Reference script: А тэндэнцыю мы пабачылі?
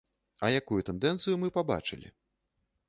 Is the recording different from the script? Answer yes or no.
yes